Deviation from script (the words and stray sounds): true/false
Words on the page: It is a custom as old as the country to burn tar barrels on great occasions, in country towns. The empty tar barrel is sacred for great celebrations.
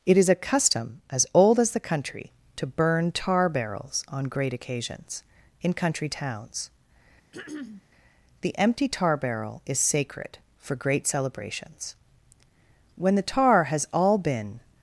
true